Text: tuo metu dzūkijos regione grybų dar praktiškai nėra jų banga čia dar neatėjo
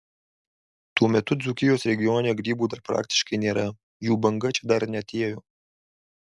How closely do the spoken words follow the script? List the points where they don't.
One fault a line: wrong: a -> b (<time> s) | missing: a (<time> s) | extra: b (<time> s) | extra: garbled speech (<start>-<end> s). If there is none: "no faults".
no faults